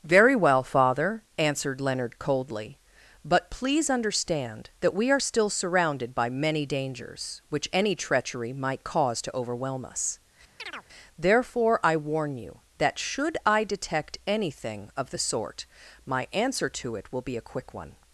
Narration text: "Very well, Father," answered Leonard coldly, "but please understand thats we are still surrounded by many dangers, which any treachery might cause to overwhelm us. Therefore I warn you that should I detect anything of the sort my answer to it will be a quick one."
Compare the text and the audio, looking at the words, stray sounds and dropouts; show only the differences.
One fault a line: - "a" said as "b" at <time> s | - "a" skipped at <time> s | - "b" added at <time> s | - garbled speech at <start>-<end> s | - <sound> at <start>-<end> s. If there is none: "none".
- "thats" said as "that" at 4.8 s
- chirp at 10.6-10.9 s